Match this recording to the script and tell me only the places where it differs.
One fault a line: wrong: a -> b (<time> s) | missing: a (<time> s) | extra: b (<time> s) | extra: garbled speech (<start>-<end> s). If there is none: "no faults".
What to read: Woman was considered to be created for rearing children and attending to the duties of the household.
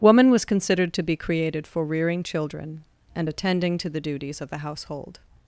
no faults